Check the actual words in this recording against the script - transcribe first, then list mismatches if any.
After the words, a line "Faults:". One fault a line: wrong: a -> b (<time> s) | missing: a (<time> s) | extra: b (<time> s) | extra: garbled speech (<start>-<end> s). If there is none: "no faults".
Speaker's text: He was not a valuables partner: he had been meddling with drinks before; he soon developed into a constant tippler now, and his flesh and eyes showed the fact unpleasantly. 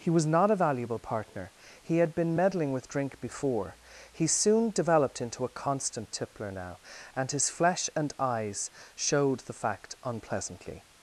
He was not a valuable partner: he had been meddling with drink before; he soon developed into a constant tippler now, and his flesh and eyes showed the fact unpleasantly.
Faults:
wrong: valuables -> valuable (0.6 s)
wrong: drinks -> drink (2.9 s)